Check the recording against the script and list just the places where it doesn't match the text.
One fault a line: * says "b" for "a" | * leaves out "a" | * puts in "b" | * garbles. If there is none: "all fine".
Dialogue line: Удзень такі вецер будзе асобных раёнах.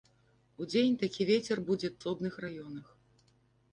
all fine